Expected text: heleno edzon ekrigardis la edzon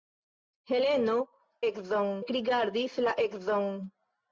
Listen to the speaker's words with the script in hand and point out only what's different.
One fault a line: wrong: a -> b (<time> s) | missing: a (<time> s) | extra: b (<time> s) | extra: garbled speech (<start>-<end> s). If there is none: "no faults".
no faults